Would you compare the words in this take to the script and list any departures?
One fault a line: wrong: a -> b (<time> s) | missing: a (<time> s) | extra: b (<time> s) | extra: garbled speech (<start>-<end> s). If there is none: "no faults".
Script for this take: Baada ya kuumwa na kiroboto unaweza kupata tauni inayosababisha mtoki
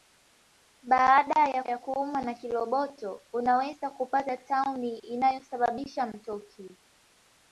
extra: ya (1.6 s)